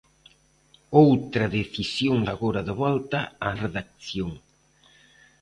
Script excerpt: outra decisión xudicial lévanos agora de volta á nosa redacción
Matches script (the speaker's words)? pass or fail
fail